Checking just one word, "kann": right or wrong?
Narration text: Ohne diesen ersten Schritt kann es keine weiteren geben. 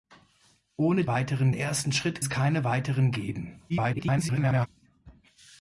wrong